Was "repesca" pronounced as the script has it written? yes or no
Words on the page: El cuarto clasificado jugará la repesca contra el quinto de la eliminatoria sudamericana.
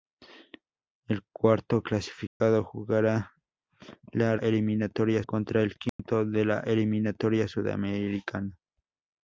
no